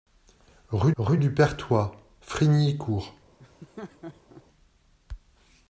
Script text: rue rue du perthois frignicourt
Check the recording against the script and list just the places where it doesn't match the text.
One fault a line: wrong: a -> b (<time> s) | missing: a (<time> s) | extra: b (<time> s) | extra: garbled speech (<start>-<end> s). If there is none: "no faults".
no faults